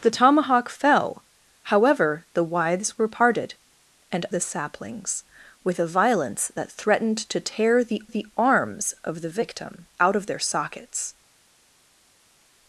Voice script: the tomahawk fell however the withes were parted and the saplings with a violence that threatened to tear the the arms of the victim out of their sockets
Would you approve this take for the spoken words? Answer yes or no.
yes